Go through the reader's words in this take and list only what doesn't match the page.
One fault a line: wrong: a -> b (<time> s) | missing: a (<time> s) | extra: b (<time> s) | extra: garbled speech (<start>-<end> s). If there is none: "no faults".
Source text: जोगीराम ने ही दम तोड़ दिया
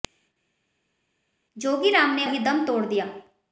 no faults